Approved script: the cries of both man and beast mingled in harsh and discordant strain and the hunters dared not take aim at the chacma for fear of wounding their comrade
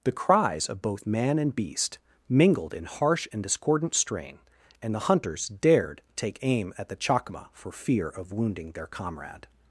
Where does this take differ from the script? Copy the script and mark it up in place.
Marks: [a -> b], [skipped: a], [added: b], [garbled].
the cries of both man and beast mingled in harsh and discordant strain and the hunters dared [skipped: not] take aim at the chacma for fear of wounding their comrade